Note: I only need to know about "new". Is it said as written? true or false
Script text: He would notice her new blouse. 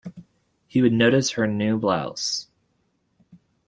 true